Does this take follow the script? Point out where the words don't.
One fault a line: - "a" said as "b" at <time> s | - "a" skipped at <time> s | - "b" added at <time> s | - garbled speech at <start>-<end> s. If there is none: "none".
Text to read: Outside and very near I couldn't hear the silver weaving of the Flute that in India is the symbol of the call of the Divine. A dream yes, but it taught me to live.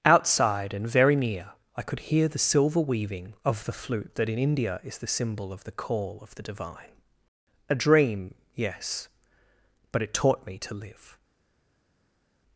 - "couldn't" said as "could" at 1.8 s